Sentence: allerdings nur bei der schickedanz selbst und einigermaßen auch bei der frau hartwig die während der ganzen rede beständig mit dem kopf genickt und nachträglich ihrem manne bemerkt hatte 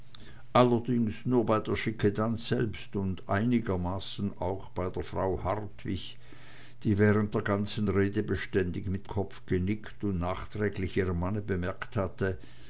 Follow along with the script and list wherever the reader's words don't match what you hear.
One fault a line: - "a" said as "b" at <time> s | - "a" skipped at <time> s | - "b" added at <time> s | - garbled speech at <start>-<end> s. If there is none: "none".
- "dem" skipped at 9.1 s